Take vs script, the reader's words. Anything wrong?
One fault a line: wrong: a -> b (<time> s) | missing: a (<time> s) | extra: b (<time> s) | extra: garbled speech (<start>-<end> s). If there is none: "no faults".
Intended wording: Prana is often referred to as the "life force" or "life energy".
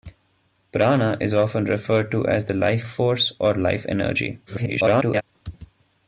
extra: garbled speech (4.5-5.2 s)